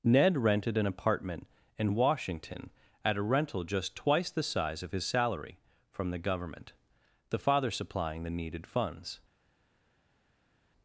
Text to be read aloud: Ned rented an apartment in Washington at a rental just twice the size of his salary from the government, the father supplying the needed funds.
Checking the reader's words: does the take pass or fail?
pass